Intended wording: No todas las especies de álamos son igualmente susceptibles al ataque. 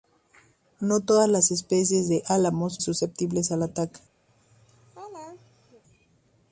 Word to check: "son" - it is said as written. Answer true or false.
false